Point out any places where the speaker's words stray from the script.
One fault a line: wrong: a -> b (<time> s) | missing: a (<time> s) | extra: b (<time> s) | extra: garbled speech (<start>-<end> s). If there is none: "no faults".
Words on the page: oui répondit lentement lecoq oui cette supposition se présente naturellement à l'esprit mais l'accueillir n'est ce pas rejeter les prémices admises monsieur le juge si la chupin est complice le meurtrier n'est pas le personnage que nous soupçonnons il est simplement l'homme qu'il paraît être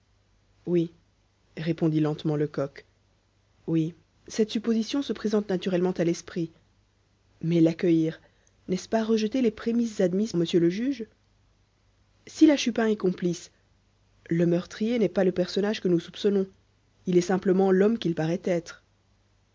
no faults